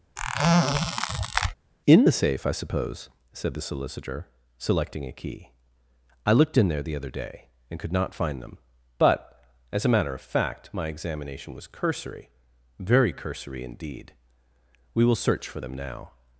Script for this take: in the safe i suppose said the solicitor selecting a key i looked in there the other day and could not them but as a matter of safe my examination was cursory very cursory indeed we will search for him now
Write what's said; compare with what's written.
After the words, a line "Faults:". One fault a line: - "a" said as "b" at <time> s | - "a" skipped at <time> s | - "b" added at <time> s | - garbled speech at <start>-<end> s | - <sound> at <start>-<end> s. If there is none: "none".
in the safe i suppose said the solicitor selecting a key i looked in there the other day and could not find them but as a matter of fact my examination was cursory very cursory indeed we will search for them now
Faults:
- squeak at 0.2-1.5 s
- "find" added at 8.1 s
- "safe" said as "fact" at 10.2 s
- "him" said as "them" at 15.6 s